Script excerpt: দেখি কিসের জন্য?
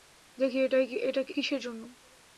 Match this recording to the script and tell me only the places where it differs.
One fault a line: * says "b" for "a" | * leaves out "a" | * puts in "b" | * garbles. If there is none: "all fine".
all fine